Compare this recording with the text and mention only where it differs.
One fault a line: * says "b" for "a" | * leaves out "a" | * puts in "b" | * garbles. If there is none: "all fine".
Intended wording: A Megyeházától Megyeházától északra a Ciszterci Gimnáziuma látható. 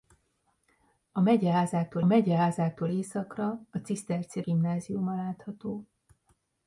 all fine